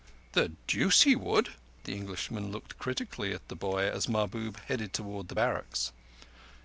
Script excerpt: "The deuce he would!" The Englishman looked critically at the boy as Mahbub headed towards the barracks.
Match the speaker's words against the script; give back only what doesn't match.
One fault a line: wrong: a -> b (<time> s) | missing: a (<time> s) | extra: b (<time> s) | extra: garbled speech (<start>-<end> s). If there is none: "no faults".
no faults